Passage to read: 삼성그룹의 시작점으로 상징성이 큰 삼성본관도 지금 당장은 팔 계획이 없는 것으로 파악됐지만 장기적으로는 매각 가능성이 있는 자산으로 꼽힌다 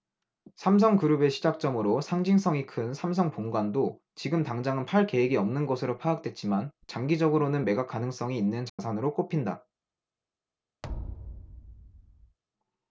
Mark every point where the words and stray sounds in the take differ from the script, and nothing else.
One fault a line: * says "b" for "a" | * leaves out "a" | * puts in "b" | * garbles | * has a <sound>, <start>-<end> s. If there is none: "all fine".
* has a dropout, 8.7-8.8 s
* has a thud, 10.8-12.4 s